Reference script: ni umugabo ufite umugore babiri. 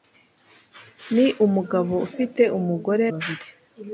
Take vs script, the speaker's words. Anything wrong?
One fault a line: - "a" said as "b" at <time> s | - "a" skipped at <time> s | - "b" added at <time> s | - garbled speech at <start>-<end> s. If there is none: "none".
none